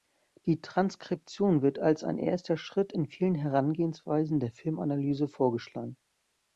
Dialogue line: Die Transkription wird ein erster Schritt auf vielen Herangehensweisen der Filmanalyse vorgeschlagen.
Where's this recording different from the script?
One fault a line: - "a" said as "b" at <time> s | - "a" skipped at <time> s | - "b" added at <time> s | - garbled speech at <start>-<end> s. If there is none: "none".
- "als" added at 1.8 s
- "auf" said as "in" at 2.9 s